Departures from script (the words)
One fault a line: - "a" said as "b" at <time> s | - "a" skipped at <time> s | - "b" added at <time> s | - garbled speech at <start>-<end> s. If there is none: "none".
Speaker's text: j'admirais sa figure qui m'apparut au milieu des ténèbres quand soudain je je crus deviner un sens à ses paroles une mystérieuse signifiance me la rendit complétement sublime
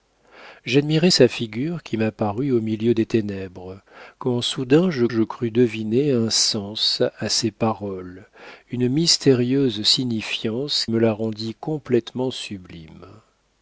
none